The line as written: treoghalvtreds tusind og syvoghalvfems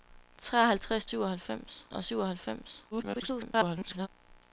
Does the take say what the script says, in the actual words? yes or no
no